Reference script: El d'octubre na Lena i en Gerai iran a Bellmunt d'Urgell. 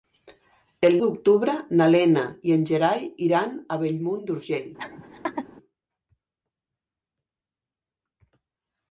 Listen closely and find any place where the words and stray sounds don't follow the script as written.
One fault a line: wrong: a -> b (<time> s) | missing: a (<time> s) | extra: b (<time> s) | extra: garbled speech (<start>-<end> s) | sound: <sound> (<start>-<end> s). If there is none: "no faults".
sound: laugh (4.8-5.5 s)